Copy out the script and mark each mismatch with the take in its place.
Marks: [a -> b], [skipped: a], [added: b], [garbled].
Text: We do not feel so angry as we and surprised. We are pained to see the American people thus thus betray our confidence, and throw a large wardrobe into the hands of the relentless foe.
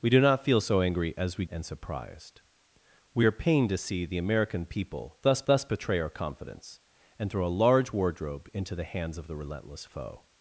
We do not feel so angry as we and surprised. We are pained to see the American people thus thus betray our confidence, and throw a large wardrobe into the hands of the relentless foe.